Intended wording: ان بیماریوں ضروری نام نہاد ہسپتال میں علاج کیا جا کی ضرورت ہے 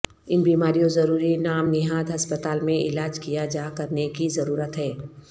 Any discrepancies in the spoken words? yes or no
yes